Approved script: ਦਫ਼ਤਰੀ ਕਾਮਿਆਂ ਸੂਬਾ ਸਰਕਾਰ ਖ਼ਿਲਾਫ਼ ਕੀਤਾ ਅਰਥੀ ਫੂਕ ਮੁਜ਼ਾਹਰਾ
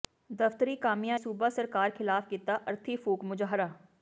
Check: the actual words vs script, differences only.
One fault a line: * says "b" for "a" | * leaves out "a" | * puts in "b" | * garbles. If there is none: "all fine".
all fine